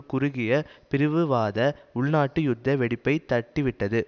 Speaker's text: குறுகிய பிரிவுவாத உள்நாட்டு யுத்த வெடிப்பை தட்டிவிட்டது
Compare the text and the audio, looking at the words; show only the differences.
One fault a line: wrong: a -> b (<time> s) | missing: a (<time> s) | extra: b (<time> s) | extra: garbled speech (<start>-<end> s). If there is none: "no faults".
no faults